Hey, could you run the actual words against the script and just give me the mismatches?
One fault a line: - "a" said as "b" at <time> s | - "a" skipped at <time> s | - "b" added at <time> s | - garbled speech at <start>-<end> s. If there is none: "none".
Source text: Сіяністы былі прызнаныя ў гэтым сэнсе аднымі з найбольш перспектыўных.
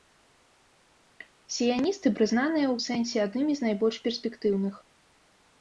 - "былі" skipped at 2.1 s
- "гэтым" skipped at 2.7 s